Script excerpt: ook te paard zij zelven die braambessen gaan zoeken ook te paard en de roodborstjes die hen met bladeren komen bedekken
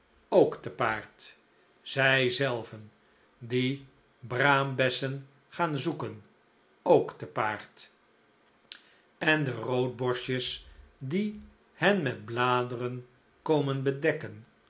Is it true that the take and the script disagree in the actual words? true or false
false